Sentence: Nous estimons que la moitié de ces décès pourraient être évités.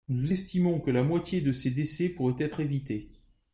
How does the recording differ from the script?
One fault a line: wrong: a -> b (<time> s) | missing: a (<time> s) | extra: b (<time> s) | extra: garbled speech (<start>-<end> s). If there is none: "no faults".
no faults